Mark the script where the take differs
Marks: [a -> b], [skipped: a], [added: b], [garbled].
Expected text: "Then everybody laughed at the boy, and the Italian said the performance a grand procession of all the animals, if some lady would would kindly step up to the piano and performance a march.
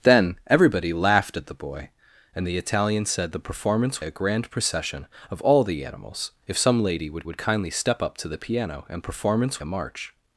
"Then everybody laughed at the boy, and the Italian said the performance a grand procession of all the animals, if some lady would would kindly step up to the piano and performance a march.